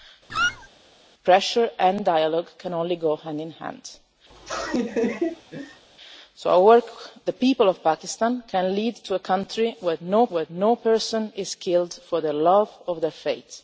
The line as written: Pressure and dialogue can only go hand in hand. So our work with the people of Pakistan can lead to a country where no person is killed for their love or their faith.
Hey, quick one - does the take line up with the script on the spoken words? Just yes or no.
no